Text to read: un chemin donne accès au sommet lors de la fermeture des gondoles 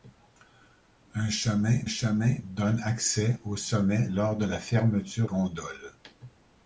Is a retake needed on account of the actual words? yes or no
yes